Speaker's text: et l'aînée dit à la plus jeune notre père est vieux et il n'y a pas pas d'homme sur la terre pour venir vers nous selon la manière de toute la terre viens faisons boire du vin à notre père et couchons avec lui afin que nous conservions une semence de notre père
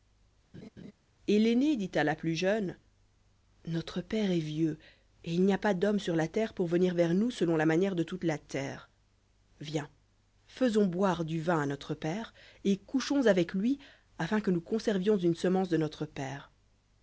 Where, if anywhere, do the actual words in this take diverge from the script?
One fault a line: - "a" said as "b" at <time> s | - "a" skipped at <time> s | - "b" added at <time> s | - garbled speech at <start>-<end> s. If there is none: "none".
- "pas" skipped at 5.7 s